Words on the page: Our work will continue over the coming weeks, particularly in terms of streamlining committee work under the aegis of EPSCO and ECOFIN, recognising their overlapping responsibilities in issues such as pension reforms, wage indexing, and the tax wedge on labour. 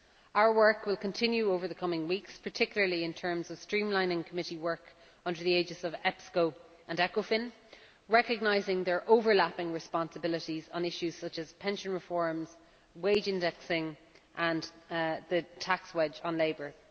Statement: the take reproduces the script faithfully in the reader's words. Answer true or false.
false